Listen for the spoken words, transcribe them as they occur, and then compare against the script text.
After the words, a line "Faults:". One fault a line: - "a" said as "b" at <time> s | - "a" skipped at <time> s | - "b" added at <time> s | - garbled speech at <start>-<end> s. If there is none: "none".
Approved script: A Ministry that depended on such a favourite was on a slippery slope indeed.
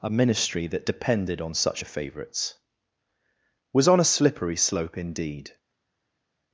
A Ministry that depended on such a favourites was on a slippery slope indeed.
Faults:
- "favourite" said as "favourites" at 1.8 s